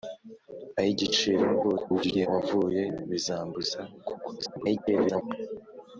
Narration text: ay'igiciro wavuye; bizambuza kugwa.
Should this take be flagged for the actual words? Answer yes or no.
yes